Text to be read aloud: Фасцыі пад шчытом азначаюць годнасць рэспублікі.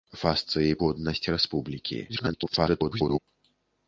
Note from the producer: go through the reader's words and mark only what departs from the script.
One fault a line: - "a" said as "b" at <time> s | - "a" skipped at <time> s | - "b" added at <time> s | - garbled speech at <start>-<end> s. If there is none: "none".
- "пад шчытом азначаюць" skipped at 0.8 s
- garbled speech at 2.1-3.2 s